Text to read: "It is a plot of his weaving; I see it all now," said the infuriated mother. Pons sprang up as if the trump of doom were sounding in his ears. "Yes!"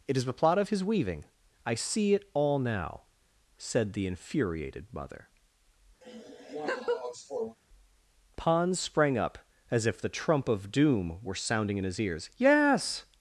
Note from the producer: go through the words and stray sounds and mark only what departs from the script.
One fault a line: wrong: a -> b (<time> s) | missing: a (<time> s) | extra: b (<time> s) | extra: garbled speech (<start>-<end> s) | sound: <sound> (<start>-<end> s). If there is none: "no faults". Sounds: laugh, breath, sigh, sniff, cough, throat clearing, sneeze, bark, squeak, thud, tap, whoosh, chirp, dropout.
wrong: a -> the (0.2 s)
sound: laugh (6.0-7.6 s)